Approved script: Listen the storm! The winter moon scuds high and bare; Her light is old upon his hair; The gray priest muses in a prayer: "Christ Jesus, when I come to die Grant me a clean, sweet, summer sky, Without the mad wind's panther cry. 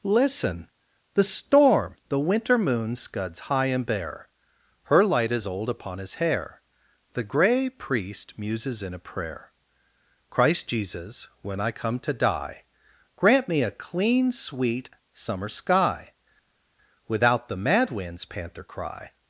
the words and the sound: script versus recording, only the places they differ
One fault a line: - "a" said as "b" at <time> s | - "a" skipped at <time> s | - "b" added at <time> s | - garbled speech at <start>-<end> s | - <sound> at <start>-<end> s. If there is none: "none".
none